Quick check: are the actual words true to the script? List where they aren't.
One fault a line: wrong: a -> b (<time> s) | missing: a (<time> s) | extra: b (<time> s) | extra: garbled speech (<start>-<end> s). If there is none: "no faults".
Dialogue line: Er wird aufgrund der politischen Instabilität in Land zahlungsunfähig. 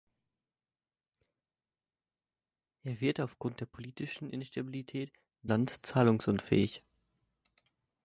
no faults